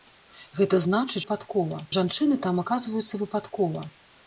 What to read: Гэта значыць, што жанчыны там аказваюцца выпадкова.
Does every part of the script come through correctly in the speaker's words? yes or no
no